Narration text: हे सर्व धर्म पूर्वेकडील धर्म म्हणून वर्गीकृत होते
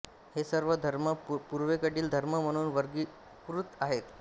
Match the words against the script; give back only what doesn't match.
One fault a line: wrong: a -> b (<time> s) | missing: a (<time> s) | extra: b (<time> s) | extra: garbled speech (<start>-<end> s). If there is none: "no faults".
wrong: होते -> आहेत (3.8 s)